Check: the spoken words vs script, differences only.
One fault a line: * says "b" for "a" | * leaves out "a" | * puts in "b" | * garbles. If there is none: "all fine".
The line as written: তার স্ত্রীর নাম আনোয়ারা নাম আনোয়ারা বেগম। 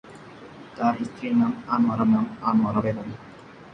all fine